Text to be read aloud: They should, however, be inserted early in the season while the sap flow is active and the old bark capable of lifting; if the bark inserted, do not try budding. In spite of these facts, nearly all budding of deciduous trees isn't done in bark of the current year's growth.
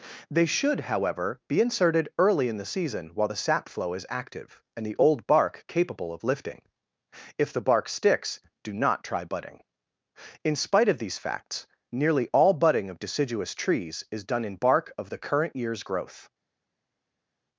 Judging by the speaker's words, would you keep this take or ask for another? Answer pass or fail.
fail